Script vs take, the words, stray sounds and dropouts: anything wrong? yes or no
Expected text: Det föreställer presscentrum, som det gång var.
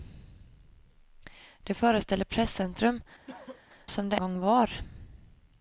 yes